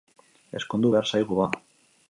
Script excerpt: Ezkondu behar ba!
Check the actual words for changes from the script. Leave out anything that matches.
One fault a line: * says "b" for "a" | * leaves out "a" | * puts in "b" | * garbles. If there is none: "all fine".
* puts in "zaigu"